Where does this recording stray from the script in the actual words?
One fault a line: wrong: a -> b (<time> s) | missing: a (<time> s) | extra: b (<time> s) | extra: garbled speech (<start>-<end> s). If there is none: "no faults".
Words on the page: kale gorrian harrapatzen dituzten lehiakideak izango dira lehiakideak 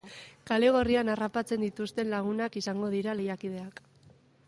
wrong: lehiakideak -> lagunak (2.1 s)